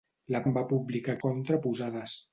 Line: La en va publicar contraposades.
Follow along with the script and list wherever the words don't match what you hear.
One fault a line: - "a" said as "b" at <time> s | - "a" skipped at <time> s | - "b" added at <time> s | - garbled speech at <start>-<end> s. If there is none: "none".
none